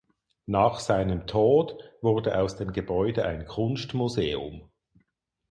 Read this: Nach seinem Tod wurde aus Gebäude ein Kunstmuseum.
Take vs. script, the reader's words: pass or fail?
fail